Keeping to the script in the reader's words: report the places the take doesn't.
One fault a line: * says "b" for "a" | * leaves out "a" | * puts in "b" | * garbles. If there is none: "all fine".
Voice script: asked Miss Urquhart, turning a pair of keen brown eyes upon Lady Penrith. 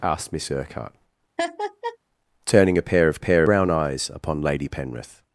* says "pair" for "keen"